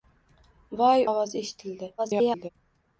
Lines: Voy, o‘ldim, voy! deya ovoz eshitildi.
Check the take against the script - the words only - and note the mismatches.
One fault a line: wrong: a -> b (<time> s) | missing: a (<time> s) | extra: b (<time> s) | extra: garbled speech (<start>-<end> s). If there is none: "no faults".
missing: o‘ldim voy deya (1.0 s)
extra: garbled speech (2.0-2.5 s)